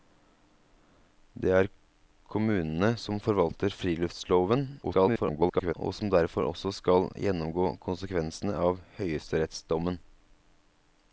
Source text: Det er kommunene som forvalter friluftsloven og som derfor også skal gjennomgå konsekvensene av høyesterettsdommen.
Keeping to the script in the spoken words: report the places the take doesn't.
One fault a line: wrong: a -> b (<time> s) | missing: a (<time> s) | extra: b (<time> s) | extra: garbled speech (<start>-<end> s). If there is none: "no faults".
extra: garbled speech (4.8-5.7 s)